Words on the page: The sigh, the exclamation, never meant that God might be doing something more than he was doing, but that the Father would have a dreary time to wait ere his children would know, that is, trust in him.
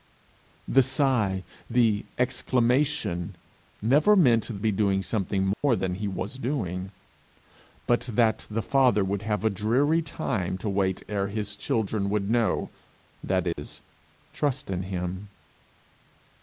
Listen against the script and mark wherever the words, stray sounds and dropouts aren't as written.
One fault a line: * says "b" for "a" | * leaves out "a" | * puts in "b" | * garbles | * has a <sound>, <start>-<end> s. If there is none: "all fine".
* leaves out "that God might"
* has a dropout, 5.5-5.6 s
* has a dropout, 13.5-13.6 s